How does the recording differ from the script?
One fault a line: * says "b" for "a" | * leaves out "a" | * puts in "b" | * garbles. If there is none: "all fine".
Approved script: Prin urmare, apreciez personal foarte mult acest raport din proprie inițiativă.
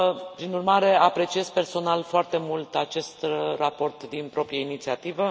all fine